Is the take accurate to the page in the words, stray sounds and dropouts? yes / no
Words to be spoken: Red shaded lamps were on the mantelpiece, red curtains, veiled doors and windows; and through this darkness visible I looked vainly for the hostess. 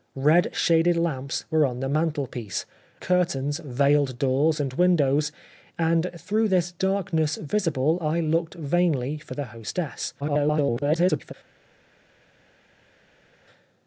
no